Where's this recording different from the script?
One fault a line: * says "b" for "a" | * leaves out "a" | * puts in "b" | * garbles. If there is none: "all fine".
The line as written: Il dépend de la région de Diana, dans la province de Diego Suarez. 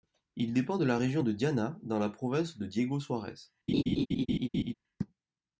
all fine